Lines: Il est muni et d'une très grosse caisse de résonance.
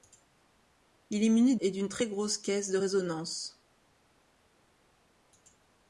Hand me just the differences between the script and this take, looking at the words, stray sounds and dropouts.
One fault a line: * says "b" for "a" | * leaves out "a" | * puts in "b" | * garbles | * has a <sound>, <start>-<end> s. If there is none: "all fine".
all fine